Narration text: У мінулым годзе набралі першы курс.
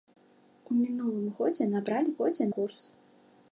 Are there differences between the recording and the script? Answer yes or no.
yes